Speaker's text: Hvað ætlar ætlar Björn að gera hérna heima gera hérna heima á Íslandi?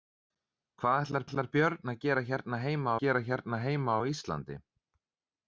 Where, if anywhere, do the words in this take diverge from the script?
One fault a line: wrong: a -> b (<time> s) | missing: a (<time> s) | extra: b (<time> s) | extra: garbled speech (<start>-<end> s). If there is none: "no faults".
no faults